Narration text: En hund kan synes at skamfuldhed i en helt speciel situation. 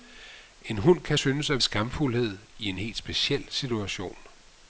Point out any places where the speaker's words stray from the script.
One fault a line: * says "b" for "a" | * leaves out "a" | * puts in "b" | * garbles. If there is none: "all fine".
all fine